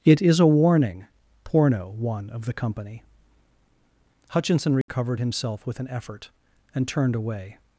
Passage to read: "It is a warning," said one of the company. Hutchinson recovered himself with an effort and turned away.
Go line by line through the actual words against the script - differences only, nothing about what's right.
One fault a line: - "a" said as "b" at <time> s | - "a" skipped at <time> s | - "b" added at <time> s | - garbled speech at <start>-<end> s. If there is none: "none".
- "said" said as "porno" at 1.4 s